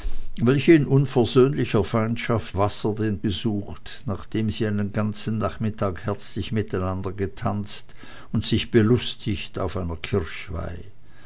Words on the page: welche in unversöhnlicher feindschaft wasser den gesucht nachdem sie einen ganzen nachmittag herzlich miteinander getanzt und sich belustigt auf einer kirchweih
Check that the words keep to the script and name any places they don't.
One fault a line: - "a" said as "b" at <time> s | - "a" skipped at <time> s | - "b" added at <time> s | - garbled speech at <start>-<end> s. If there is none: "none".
none